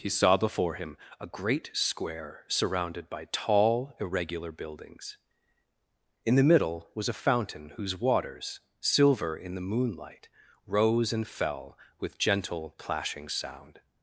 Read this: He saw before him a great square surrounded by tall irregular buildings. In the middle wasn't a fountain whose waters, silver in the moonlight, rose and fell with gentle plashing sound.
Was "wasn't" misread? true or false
true